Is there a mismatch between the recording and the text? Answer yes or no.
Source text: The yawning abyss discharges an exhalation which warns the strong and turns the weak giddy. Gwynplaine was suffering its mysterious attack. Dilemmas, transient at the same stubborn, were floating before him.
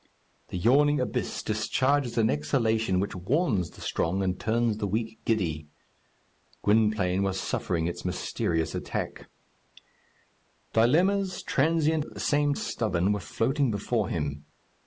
no